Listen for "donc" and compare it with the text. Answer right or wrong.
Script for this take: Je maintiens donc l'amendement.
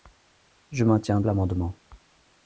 wrong